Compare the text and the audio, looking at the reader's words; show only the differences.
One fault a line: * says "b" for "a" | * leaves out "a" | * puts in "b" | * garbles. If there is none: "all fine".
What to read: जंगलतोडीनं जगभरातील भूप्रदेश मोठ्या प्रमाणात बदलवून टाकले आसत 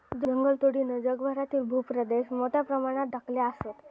* leaves out "बदलवून"